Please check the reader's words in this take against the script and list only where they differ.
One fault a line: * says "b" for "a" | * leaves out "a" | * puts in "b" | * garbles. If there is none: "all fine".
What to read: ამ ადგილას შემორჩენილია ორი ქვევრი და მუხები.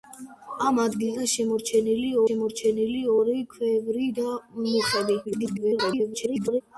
* puts in "შემორჩენილია"
* garbles